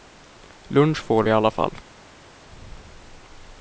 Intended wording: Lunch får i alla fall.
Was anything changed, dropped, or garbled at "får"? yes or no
no